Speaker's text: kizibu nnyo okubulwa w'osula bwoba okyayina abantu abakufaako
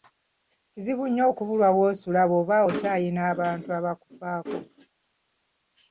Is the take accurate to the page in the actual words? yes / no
yes